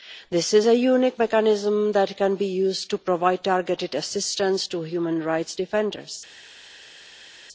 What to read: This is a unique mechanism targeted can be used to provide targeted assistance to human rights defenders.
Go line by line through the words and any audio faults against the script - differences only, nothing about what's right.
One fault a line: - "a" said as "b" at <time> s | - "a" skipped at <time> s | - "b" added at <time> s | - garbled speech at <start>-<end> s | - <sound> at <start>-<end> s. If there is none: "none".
- "targeted" said as "that" at 1.9 s